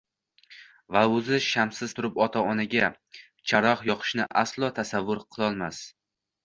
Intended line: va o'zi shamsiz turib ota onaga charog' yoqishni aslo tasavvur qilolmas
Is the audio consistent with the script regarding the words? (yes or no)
yes